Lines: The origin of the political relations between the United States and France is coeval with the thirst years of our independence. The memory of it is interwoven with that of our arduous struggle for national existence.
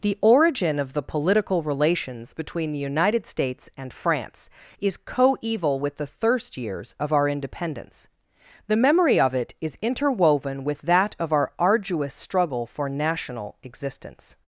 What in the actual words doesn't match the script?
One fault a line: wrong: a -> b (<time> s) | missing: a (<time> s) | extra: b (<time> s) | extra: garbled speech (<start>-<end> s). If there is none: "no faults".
no faults